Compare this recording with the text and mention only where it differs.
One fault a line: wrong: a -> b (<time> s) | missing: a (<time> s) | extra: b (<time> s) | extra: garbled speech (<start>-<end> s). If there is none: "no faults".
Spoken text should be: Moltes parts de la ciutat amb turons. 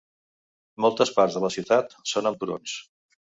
extra: són (2.1 s)